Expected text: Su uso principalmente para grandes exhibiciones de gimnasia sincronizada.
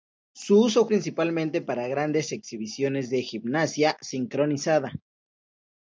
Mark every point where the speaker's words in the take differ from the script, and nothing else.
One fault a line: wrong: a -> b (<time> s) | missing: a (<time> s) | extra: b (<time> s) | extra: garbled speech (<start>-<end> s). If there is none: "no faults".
no faults